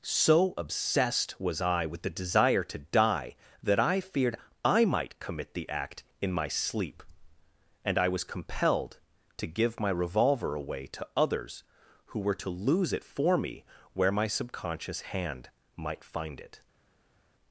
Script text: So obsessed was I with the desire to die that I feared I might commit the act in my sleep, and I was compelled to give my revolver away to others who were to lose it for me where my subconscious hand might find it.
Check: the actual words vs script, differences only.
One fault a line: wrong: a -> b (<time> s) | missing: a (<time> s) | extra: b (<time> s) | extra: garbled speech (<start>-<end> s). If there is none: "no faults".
no faults